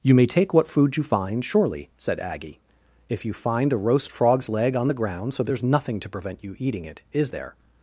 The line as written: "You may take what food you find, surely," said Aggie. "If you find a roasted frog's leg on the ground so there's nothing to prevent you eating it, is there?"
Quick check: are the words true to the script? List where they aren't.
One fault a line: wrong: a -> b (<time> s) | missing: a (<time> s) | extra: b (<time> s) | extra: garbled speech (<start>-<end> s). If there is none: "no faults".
wrong: roasted -> roast (3.8 s)